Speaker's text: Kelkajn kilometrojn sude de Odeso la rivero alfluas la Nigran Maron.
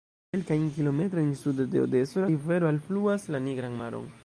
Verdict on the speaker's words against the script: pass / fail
pass